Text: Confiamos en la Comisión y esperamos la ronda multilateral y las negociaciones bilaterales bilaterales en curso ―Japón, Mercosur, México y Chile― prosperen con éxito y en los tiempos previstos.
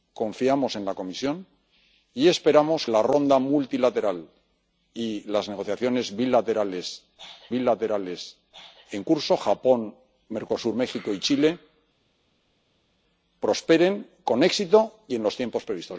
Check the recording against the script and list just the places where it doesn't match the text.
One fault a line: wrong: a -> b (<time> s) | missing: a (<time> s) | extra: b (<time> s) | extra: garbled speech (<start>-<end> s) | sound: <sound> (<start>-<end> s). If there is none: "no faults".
no faults